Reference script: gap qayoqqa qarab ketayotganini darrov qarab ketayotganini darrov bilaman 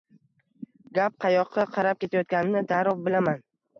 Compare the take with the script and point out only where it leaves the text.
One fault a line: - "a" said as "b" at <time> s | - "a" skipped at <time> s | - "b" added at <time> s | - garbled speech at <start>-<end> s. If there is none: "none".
- "qarab ketayotganini darrov" skipped at 3.0 s